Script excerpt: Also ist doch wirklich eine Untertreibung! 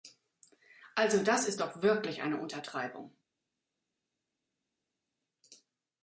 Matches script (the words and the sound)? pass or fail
fail